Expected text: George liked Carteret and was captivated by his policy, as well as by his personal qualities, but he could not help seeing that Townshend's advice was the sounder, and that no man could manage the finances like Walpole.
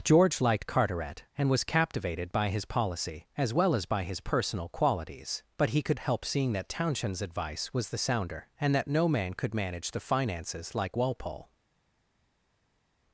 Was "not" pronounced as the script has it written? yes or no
no